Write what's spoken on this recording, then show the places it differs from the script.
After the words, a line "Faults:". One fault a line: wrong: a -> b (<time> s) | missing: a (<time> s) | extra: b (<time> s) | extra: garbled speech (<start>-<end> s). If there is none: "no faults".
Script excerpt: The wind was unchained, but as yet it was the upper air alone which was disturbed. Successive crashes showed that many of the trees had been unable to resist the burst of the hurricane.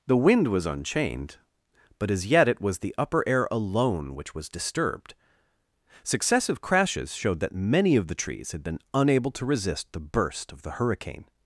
The wind was unchained, but as yet it was the upper air alone which was disturbed. Successive crashes showed that many of the trees had been unable to resist the burst of the hurricane.
Faults:
no faults